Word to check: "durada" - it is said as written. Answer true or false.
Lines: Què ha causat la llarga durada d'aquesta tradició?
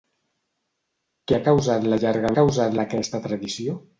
false